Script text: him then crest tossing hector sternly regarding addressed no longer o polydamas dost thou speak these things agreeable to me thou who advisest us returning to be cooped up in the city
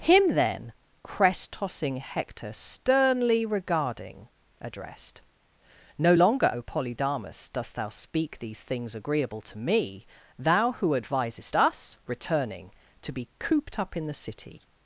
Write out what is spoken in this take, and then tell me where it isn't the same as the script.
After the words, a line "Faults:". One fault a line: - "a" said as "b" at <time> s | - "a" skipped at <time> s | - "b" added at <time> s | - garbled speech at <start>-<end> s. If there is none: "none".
him then crest tossing hector sternly regarding addressed no longer o polydamas dost thou speak these things agreeable to me thou who advisest us returning to be cooped up in the city
Faults:
none